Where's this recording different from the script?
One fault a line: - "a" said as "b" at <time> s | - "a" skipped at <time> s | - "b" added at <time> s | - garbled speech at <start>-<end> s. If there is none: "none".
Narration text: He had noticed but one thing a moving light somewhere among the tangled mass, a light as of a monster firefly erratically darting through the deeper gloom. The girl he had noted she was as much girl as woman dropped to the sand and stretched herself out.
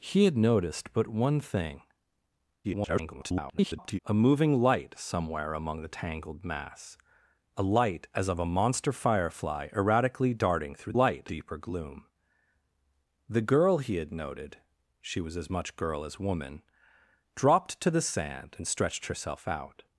- garbled speech at 2.6-4.0 s
- "the" said as "light" at 10.9 s